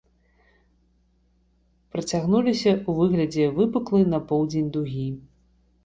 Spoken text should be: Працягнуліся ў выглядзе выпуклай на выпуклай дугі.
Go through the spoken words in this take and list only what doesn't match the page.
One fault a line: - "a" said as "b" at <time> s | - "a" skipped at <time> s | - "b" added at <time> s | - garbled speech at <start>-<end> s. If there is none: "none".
- "выпуклай" said as "поўдзень" at 4.3 s